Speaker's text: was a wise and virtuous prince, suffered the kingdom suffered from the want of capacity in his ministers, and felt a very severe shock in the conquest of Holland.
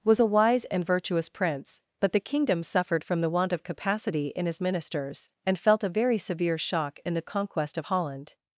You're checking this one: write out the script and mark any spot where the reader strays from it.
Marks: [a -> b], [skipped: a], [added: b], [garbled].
was a wise and virtuous prince, [suffered -> but] the kingdom suffered from the want of capacity in his ministers, and felt a very severe shock in the conquest of Holland.